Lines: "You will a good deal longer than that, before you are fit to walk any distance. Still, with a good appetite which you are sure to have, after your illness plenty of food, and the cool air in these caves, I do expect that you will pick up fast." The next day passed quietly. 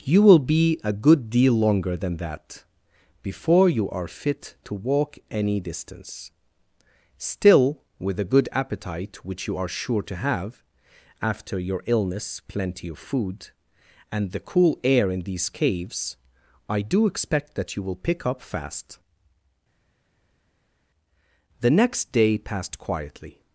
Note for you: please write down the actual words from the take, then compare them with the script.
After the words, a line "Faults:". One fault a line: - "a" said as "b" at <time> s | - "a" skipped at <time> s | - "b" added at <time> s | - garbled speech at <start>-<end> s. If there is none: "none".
"You will be a good deal longer than that, before you are fit to walk any distance. Still, with a good appetite which you are sure to have, after your illness plenty of food, and the cool air in these caves, I do expect that you will pick up fast." The next day passed quietly.
Faults:
- "be" added at 0.4 s